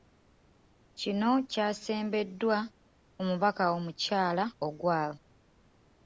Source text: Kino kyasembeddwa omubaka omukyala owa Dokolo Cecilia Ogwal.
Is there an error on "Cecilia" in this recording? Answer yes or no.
yes